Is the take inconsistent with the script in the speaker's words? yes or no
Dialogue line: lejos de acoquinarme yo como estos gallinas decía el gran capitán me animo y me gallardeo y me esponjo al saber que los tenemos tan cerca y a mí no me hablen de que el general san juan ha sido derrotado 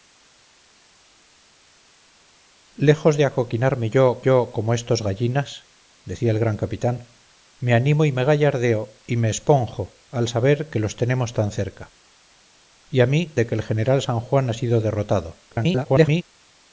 yes